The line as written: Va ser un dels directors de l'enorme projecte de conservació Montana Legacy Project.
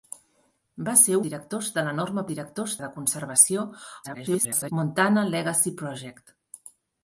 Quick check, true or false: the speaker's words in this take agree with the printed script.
false